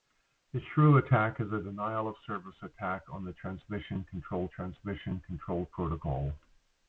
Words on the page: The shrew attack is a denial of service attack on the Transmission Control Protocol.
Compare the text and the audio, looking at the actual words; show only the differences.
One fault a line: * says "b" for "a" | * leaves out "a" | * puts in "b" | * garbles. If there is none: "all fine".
* puts in "Transmission Control"